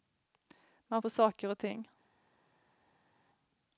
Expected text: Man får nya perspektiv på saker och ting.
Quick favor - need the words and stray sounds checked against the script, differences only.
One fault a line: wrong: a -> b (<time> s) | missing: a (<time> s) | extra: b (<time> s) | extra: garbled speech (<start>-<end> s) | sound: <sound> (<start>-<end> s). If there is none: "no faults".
missing: får nya perspektiv (1.0 s)